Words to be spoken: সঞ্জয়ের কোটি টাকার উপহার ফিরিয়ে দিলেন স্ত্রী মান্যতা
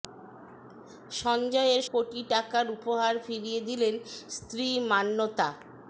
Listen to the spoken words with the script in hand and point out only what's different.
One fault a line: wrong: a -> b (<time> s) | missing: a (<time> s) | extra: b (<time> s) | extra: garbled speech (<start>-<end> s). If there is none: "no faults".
no faults